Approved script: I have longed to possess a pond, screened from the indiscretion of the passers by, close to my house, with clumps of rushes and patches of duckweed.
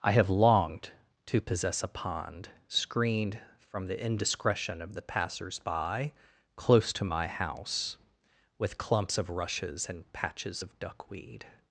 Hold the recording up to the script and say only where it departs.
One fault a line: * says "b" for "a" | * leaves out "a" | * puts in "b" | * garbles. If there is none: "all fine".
all fine